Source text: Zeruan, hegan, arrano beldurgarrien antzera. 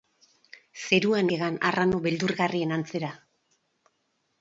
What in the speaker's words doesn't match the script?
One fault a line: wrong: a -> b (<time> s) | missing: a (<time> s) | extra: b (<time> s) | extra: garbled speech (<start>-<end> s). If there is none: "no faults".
no faults